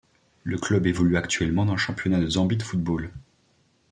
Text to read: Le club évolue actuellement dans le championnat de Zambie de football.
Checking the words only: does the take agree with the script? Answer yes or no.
yes